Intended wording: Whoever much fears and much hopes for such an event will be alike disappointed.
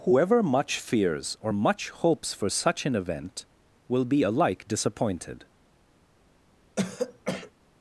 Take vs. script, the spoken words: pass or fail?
fail